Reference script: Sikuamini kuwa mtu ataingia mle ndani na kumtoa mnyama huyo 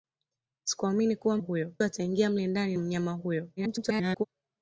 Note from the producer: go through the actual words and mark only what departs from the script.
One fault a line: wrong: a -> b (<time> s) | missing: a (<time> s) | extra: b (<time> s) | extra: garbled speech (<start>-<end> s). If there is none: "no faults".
wrong: mtu -> huyo (1.4 s)
missing: na kumtoa (2.7 s)
extra: garbled speech (3.6-4.2 s)